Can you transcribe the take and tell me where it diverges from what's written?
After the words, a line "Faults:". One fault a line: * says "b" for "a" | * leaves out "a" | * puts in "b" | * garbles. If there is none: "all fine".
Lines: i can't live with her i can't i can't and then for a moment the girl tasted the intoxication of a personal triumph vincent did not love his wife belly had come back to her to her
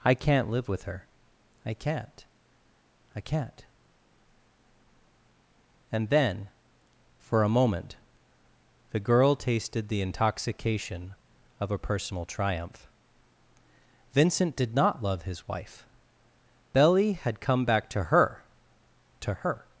i can't live with her i can't i can't and then for a moment the girl tasted the intoxication of a personal triumph vincent did not love his wife belly had come back to her to her
Faults:
all fine